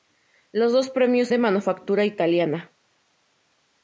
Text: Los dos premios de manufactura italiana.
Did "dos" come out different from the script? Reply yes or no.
no